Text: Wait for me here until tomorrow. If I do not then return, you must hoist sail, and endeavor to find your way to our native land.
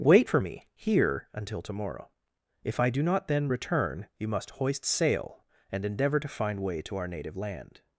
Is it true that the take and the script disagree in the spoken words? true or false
true